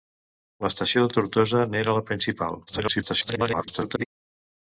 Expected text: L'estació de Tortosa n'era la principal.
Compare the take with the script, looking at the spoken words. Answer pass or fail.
fail